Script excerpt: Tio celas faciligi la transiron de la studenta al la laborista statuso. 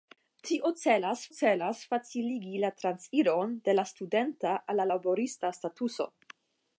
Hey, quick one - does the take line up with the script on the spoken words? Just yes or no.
no